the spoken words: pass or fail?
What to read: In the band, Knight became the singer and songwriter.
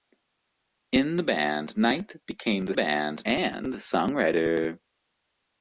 fail